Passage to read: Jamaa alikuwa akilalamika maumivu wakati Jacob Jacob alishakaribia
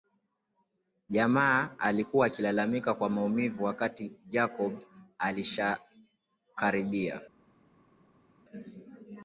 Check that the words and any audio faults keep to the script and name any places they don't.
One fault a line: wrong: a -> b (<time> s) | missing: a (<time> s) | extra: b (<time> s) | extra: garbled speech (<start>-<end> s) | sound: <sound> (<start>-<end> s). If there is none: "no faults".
extra: kwa (2.9 s)
missing: Jacob (4.8 s)